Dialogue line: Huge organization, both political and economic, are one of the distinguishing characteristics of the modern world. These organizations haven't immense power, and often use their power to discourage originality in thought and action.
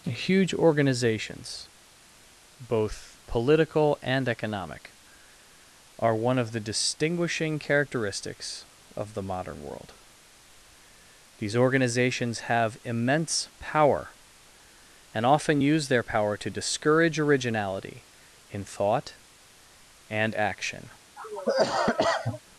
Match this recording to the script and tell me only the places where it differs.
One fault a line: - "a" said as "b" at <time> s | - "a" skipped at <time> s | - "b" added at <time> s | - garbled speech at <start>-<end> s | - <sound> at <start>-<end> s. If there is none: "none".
- "organization" said as "organizations" at 0.6 s
- "haven't" said as "have" at 12.4 s
- cough at 21.2-22.4 s